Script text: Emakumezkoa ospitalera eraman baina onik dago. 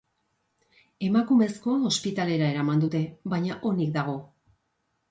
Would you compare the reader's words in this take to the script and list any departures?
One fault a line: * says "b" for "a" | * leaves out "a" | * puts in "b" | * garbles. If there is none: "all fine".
* puts in "dute"